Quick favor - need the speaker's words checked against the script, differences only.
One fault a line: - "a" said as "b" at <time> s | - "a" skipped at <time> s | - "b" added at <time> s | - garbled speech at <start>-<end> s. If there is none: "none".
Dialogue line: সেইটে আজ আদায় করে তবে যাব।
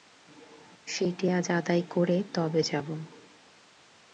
none